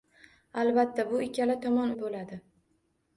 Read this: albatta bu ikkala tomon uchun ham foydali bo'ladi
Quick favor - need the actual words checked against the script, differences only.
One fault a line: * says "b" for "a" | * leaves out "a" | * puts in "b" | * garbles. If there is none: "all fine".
* leaves out "uchun ham foydali"